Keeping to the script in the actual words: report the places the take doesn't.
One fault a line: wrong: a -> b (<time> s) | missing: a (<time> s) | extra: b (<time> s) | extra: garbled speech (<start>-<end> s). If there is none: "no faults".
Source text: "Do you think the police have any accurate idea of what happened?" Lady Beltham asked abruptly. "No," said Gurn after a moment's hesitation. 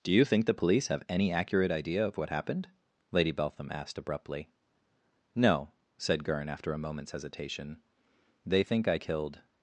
extra: They think I killed (8.4 s)